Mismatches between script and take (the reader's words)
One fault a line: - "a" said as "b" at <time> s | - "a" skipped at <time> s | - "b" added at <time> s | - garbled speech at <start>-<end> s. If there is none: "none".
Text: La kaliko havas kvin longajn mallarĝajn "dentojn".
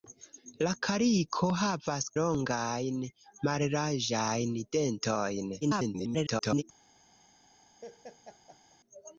- "kvin" skipped at 2.1 s
- garbled speech at 5.6-6.6 s